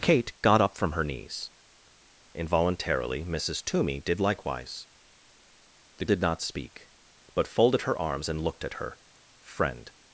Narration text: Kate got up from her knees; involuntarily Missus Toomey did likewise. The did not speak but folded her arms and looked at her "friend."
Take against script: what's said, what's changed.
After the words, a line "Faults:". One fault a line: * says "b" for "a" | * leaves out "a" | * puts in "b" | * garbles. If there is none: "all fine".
Kate got up from her knees; involuntarily Missus Toomey did likewise. The did not speak but folded her arms and looked at her "friend."
Faults:
all fine